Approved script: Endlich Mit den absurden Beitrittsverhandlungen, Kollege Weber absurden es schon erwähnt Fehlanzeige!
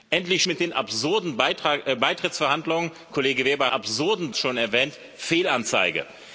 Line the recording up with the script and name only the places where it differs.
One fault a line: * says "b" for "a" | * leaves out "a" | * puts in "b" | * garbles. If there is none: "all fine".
all fine